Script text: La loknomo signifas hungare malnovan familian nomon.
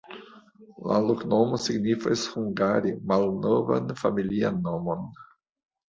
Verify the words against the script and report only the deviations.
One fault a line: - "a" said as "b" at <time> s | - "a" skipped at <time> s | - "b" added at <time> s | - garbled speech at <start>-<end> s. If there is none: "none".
none